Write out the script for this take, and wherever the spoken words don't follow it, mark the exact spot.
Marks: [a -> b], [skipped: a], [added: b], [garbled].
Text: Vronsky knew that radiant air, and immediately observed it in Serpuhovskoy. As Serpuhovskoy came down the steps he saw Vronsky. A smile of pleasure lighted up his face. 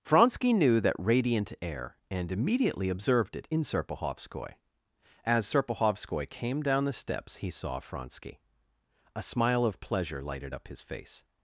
Vronsky knew that radiant air, and immediately observed it in Serpuhovskoy. As Serpuhovskoy came down the steps he saw Vronsky. A smile of pleasure lighted up his face.